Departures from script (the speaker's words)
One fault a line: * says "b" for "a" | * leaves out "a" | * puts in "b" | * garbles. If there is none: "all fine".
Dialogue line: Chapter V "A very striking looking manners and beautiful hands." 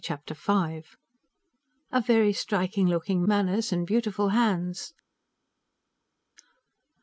all fine